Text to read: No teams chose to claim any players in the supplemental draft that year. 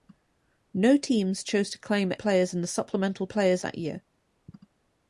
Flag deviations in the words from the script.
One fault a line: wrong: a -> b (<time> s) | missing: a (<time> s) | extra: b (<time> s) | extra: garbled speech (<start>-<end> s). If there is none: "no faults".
missing: any (2.1 s)
wrong: draft -> players (3.3 s)